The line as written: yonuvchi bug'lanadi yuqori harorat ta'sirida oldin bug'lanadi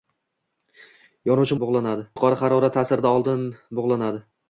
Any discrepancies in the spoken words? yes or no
no